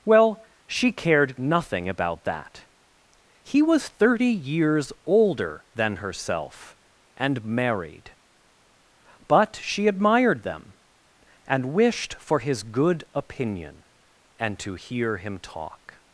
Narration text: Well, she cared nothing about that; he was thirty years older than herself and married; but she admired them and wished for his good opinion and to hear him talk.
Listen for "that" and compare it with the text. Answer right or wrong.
right